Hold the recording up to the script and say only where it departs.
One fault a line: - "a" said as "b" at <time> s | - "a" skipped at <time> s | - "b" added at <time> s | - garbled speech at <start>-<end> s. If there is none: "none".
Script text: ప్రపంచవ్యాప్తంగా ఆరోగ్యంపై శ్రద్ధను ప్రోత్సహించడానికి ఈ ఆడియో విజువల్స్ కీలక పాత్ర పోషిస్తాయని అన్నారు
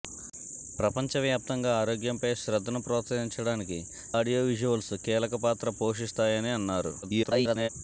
- "ఈ" skipped at 3.8 s
- garbled speech at 7.0-7.7 s